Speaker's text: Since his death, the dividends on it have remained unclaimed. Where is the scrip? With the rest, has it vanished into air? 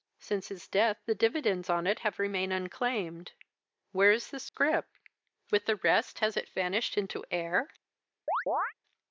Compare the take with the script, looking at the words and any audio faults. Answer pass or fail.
fail